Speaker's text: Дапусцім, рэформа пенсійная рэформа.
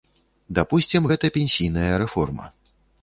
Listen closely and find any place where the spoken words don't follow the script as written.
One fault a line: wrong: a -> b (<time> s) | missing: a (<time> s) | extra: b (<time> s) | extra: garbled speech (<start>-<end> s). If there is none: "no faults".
wrong: рэформа -> гэта (1.1 s)